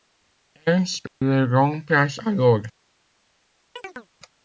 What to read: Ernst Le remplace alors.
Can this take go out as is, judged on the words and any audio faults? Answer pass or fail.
fail